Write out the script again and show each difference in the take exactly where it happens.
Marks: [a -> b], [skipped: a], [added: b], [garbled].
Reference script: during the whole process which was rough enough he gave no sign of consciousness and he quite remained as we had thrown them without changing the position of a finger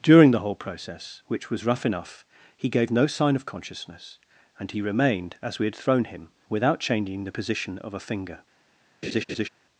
during the whole process which was rough enough he gave no sign of consciousness and he [skipped: quite] remained as we had thrown [them -> him] without changing the position of a finger